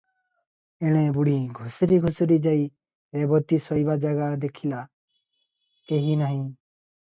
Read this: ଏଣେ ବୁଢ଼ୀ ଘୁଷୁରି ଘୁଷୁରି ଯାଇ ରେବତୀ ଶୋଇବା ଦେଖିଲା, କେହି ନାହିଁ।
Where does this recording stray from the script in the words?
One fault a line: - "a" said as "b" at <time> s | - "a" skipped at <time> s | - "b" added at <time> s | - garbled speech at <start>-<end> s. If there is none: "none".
- "ଜାଗା" added at 4.0 s